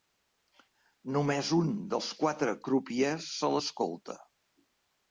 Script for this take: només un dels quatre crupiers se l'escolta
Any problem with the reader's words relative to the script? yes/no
no